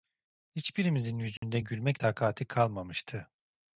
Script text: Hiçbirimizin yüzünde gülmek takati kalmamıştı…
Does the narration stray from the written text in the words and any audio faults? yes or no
yes